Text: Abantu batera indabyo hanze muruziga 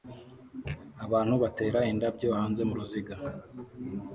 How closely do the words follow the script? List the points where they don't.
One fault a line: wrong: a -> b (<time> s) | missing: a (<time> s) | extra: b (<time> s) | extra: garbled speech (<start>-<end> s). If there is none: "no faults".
no faults